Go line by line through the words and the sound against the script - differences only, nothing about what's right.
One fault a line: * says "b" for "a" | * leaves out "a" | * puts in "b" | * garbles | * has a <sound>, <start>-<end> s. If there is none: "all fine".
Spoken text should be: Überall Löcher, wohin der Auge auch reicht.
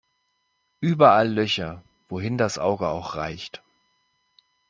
* says "das" for "der"